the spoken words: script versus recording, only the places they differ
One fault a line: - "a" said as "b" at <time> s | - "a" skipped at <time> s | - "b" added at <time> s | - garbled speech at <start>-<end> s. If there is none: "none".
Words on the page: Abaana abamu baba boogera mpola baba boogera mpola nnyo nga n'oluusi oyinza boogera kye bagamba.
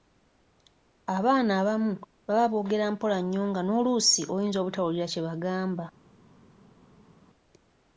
- "baba boogera mpola" skipped at 3.2 s
- "boogera" said as "obutawulira" at 4.6 s